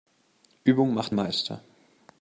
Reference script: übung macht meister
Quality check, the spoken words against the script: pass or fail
pass